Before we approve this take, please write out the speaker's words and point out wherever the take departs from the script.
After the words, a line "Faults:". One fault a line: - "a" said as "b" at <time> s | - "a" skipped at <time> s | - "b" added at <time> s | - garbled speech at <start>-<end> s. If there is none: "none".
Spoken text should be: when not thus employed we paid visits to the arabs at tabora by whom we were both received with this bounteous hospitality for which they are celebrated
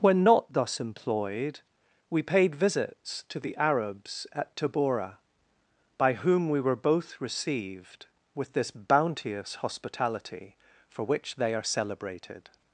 when not thus employed we paid visits to the arabs at tabora by whom we were both received with this bounteous hospitality for which they are celebrated
Faults:
none